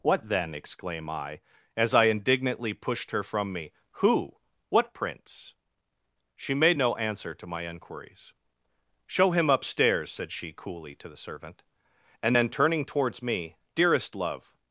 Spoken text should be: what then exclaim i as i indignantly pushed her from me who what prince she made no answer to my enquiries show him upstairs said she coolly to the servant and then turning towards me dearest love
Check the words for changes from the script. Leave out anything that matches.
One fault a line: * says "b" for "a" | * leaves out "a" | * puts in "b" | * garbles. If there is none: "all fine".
all fine